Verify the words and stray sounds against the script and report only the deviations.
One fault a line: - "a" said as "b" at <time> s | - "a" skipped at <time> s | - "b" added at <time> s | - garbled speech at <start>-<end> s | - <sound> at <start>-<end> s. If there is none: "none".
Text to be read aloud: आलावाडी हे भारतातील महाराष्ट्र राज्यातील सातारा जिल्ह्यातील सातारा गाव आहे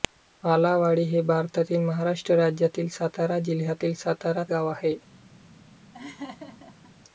- laugh at 5.9-6.9 s